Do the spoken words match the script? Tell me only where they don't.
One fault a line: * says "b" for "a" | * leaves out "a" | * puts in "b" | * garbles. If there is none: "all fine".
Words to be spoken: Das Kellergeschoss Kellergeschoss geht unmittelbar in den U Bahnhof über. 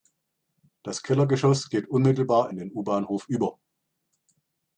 * leaves out "Kellergeschoss"